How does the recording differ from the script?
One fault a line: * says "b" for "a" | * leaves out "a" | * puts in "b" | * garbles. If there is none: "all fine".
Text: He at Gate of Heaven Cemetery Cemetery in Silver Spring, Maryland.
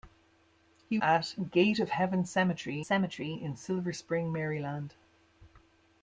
all fine